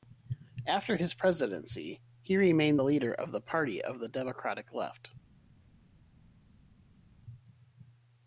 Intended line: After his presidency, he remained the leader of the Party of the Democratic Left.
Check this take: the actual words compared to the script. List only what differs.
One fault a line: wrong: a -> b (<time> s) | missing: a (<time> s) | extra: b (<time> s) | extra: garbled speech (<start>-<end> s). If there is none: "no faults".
no faults